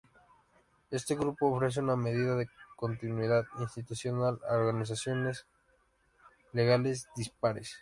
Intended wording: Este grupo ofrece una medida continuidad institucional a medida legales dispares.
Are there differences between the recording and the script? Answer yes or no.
yes